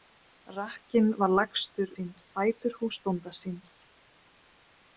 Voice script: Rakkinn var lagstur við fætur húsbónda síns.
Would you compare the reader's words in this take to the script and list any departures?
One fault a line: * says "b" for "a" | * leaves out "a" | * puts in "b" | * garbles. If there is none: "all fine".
* says "síns" for "við"